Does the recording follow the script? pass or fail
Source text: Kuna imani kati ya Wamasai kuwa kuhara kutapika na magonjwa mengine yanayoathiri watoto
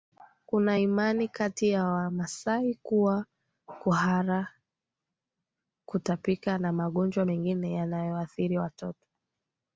pass